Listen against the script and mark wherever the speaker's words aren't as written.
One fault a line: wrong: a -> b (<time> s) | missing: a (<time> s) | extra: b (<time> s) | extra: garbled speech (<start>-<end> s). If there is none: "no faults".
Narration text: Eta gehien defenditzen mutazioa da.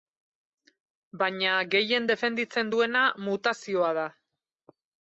wrong: Eta -> Baina (1.2 s)
extra: duena (2.8 s)